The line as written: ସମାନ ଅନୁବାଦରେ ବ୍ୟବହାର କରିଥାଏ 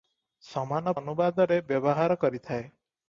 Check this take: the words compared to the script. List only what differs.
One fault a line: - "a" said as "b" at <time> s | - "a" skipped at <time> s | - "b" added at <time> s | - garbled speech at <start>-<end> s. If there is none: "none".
none